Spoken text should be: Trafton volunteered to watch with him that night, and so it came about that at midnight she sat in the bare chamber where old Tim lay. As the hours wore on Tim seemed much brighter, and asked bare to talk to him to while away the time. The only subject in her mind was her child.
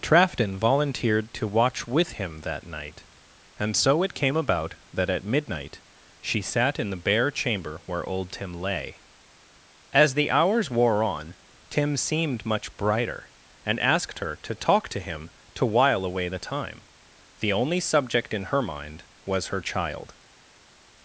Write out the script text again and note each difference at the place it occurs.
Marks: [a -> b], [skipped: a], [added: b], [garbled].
Trafton volunteered to watch with him that night, and so it came about that at midnight she sat in the bare chamber where old Tim lay. As the hours wore on Tim seemed much brighter, and asked [bare -> her] to talk to him to while away the time. The only subject in her mind was her child.